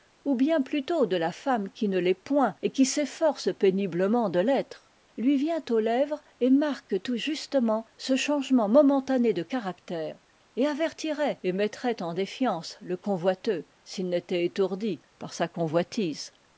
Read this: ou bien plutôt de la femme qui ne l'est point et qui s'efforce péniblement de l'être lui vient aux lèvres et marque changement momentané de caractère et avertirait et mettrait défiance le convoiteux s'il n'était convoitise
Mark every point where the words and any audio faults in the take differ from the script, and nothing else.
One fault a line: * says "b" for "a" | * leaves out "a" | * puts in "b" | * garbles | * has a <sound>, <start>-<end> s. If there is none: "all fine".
* puts in "tout justement ce"
* puts in "en"
* puts in "étourdi par sa"